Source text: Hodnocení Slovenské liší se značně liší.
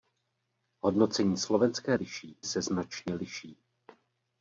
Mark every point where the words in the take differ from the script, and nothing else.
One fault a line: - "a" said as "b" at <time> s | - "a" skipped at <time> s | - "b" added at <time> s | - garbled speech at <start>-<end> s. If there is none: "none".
none